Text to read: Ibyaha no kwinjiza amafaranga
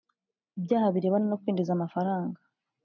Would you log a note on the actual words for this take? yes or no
yes